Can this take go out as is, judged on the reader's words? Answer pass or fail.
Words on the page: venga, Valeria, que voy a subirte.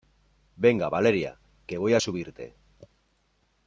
pass